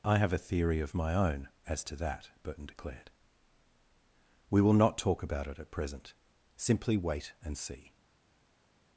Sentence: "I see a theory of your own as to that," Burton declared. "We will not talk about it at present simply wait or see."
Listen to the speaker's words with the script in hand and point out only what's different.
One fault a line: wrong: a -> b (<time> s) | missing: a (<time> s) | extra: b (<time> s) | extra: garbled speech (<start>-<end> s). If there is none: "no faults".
wrong: see -> have (0.2 s)
wrong: your -> my (0.9 s)
wrong: or -> and (7.4 s)